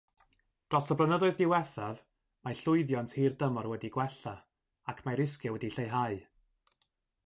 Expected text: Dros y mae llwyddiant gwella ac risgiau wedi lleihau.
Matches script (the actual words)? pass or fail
fail